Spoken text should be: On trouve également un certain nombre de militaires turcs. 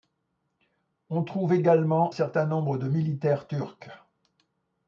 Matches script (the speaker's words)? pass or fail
fail